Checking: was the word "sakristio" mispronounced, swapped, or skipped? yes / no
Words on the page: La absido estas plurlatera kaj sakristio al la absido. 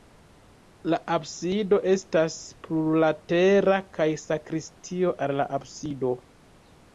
no